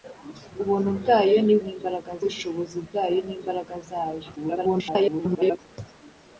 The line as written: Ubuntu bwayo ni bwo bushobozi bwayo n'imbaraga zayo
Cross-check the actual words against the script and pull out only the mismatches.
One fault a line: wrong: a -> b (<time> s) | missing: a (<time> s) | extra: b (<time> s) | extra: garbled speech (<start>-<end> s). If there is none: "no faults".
wrong: bwo -> n'imbaraga (1.6 s)
extra: garbled speech (4.4-5.6 s)